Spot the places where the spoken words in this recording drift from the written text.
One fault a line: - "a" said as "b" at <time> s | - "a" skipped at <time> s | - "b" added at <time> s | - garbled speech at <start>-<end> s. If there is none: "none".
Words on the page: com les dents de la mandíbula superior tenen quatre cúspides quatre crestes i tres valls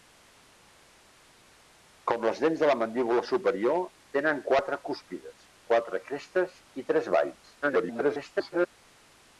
- garbled speech at 7.6-8.7 s